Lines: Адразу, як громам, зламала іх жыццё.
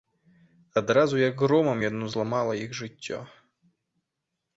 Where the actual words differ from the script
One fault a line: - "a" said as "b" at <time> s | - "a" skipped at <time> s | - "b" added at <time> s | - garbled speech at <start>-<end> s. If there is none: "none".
- "яно" added at 1.8 s